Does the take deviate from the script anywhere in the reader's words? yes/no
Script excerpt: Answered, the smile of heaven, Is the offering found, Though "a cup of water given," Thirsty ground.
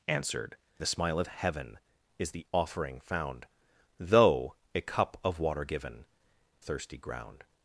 no